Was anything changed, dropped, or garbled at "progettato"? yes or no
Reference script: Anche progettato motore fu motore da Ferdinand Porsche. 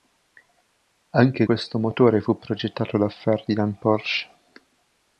yes